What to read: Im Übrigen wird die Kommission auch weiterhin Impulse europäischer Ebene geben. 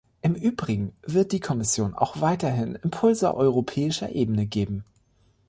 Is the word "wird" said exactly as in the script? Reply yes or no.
yes